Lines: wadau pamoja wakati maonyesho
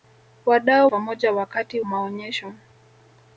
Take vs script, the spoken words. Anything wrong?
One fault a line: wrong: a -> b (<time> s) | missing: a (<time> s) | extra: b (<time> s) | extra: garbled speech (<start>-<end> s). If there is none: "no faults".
no faults